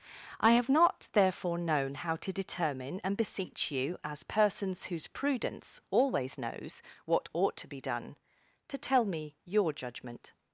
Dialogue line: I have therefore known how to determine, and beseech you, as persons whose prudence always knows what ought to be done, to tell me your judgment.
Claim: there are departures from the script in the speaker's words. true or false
true